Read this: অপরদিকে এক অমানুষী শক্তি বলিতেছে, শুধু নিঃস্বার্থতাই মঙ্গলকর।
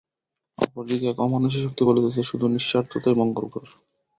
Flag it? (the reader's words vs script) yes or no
no